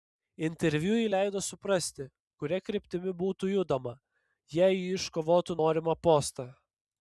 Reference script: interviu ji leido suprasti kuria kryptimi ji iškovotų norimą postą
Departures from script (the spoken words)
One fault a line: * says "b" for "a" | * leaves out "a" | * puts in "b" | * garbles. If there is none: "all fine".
* puts in "būtų judama jei"